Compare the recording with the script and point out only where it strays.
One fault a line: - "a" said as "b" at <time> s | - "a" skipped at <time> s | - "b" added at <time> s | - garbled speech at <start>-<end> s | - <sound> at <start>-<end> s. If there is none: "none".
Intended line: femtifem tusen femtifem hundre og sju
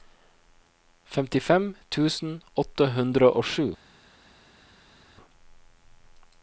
- "femtifem" said as "åtte" at 2.6 s